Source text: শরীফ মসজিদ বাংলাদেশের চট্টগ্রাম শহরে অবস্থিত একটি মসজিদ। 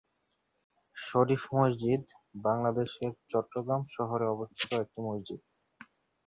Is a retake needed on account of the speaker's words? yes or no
no